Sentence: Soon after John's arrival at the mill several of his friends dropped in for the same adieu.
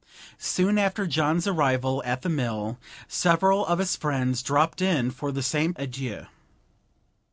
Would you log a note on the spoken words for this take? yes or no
no